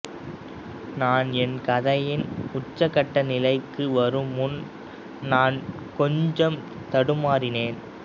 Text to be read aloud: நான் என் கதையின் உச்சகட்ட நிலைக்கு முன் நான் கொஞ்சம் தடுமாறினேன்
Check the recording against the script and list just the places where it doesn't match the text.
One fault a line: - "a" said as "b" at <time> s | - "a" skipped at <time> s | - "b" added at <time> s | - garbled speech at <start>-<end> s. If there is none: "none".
- "வரும்" added at 3.9 s